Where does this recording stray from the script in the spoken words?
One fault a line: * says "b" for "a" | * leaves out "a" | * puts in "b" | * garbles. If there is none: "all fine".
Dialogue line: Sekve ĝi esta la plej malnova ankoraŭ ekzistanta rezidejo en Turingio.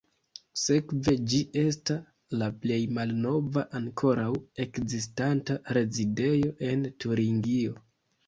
all fine